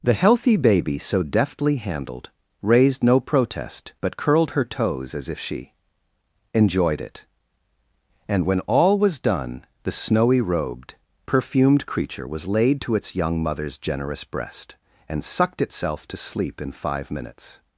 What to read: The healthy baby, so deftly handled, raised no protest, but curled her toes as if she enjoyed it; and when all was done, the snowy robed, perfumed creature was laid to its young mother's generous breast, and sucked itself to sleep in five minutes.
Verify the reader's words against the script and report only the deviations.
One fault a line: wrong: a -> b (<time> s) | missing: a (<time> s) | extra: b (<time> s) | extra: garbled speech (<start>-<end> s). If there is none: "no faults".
no faults